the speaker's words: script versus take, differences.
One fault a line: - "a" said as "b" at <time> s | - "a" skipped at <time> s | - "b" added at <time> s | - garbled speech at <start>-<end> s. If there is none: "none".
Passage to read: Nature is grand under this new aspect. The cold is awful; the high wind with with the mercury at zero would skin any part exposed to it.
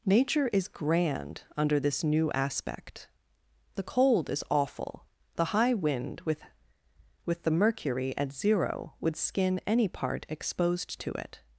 none